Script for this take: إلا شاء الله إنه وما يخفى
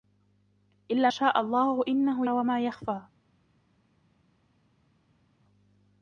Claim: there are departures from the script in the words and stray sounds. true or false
false